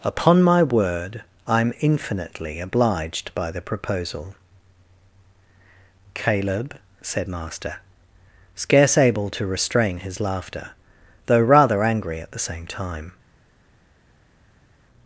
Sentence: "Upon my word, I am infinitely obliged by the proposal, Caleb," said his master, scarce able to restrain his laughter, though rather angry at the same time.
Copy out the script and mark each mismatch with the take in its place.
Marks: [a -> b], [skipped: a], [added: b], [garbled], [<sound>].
"Upon my word, I am infinitely obliged by the proposal, Caleb," said [skipped: his] master, scarce able to restrain his laughter, though rather angry at the same time.